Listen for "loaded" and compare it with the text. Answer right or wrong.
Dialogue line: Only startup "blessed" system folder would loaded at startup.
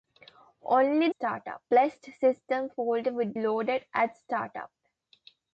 right